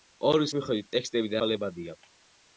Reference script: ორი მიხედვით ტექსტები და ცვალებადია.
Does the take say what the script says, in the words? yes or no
yes